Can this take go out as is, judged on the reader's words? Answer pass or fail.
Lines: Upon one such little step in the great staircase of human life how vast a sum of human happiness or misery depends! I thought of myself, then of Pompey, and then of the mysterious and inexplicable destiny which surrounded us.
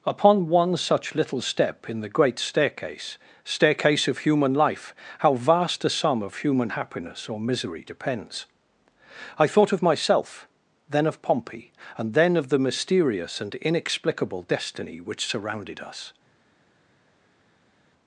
fail